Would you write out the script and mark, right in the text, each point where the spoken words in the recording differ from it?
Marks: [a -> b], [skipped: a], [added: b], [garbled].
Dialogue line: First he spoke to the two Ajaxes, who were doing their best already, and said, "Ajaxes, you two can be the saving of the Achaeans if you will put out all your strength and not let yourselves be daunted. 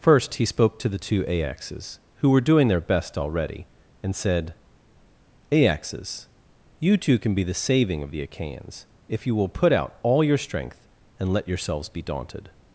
First he spoke to the two Ajaxes, who were doing their best already, and said, "Ajaxes, you two can be the saving of the Achaeans if you will put out all your strength and [skipped: not] let yourselves be daunted.